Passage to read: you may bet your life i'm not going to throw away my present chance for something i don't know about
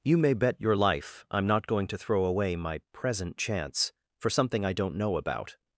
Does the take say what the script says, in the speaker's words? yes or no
yes